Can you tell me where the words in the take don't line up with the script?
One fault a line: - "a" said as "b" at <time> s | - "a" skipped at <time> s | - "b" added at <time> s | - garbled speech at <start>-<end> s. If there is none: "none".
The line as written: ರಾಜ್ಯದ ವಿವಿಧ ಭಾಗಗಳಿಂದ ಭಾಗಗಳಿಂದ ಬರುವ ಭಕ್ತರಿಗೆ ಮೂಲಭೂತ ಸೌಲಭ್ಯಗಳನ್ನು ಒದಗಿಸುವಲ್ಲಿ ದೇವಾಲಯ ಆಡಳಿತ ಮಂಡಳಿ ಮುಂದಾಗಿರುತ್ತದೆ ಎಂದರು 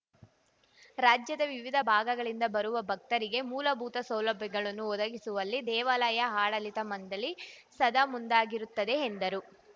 - "ಭಾಗಗಳಿಂದ" skipped at 2.4 s
- "ಸದಾ" added at 7.8 s